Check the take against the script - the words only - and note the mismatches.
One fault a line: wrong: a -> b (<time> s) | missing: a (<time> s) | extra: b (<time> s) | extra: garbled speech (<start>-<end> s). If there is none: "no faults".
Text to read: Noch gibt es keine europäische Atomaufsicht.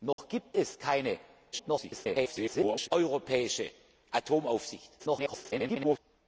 extra: garbled speech (1.5-2.9 s)
extra: garbled speech (5.0-6.0 s)